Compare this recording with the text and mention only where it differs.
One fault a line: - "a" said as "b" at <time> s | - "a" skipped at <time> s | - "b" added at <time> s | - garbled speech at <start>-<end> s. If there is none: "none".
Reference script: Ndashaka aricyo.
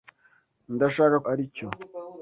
none